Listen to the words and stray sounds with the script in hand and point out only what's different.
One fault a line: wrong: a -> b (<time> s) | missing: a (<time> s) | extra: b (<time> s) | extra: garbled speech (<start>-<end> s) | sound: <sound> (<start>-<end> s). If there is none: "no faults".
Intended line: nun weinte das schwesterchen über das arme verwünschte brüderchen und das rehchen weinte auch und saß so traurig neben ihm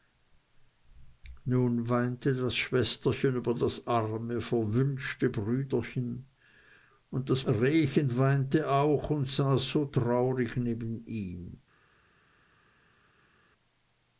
no faults